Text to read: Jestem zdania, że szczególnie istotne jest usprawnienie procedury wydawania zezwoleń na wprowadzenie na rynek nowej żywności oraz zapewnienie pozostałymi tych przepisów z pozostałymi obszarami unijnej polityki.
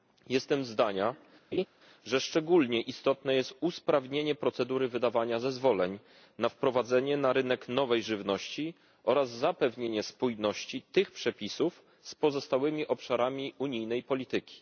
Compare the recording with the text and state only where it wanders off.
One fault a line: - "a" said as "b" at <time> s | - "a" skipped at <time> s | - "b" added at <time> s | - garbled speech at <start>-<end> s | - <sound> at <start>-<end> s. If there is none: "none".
- laugh at 1.5-1.7 s
- "pozostałymi" said as "spójności" at 10.0 s